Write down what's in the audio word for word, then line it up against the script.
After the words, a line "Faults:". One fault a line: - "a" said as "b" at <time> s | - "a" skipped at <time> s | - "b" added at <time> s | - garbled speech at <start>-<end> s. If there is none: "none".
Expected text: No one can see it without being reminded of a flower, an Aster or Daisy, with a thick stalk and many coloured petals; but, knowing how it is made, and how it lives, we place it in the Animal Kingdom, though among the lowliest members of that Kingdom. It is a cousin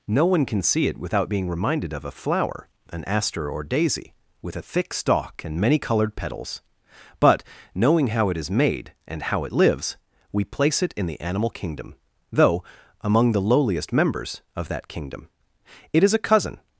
No one can see it without being reminded of a flower, an Aster or Daisy, with a thick stalk and many coloured petals; but, knowing how it is made, and how it lives, we place it in the Animal Kingdom, though among the lowliest members of that Kingdom. It is a cousin
Faults:
none